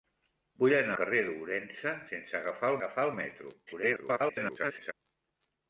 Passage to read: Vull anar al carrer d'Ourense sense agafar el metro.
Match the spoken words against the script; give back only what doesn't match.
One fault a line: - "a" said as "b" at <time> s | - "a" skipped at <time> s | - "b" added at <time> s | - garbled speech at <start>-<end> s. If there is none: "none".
- "al" skipped at 0.9 s
- "agafar" added at 2.8 s
- garbled speech at 3.7-4.9 s